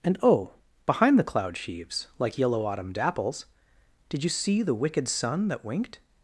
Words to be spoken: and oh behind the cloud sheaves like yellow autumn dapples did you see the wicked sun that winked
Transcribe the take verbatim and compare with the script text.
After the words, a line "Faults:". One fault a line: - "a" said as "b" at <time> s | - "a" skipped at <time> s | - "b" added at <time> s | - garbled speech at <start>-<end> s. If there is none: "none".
and oh behind the cloud sheaves like yellow autumn dapples did you see the wicked sun that winked
Faults:
none